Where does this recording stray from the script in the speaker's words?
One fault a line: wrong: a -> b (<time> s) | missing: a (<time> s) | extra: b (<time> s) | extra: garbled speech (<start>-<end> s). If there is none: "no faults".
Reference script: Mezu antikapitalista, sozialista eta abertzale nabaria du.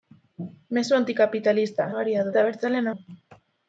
wrong: sozialista -> nabaria (1.9 s)
missing: nabaria (2.9 s)